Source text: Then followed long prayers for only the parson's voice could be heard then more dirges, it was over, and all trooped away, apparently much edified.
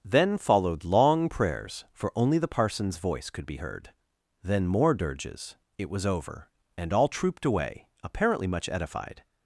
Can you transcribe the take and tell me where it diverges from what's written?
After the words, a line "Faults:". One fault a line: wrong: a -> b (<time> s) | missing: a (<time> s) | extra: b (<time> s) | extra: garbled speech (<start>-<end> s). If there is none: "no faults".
Then followed long prayers for only the parson's voice could be heard then more dirges, it was over, and all trooped away, apparently much edified.
Faults:
no faults